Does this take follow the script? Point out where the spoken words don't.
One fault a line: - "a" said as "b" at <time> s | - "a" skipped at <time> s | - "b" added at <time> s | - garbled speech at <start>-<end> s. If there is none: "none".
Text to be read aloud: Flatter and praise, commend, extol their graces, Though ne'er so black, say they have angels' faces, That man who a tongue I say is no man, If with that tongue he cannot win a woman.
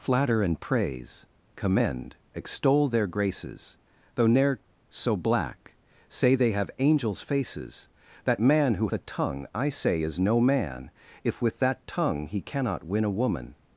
none